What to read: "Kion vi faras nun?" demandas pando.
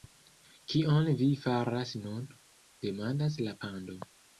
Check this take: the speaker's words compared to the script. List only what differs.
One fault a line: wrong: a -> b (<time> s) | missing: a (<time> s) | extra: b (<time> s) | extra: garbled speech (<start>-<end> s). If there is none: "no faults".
extra: la (3.5 s)